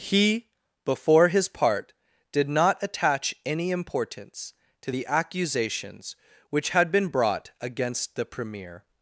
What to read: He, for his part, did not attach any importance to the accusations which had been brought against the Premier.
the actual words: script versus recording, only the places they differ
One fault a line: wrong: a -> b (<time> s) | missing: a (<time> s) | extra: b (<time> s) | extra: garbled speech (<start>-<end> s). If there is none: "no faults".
wrong: for -> before (0.8 s)